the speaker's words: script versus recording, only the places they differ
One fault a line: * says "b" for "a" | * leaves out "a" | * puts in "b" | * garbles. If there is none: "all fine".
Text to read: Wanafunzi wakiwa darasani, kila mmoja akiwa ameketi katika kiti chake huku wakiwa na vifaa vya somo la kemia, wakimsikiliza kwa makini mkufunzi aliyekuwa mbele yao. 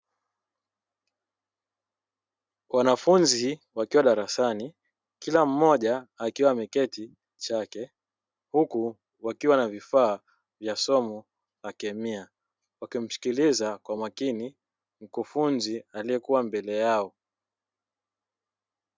* leaves out "katika kiti"